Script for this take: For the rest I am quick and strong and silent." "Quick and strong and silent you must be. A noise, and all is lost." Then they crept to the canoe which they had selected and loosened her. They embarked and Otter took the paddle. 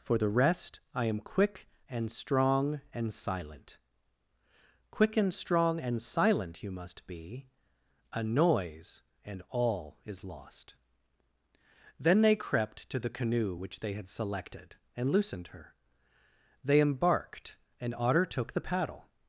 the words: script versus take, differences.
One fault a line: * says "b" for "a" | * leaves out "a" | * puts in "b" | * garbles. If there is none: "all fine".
all fine